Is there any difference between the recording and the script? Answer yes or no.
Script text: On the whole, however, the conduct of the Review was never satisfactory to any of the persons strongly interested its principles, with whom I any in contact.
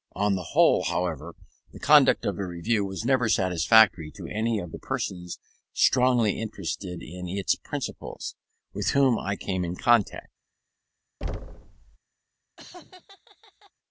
yes